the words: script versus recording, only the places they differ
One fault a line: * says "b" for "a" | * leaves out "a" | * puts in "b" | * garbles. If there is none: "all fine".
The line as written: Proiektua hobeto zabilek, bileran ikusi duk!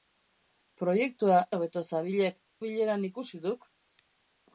all fine